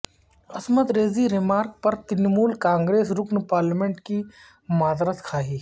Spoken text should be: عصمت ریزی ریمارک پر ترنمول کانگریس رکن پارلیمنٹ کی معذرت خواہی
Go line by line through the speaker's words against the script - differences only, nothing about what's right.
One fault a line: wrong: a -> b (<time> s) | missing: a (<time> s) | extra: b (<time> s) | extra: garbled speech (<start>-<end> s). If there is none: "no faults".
no faults